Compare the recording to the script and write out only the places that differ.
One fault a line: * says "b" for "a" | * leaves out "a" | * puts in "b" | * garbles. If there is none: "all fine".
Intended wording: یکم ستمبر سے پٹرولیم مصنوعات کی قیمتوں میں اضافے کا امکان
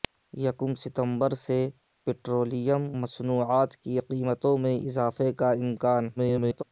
* garbles